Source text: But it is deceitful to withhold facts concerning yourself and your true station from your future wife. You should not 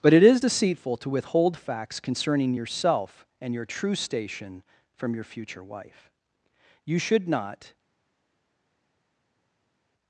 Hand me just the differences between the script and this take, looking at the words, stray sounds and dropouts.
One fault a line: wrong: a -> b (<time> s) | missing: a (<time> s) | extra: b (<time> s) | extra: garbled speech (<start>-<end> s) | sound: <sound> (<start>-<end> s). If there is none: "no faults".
no faults